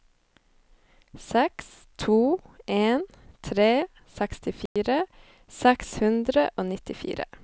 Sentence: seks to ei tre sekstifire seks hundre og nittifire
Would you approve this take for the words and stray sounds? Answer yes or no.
no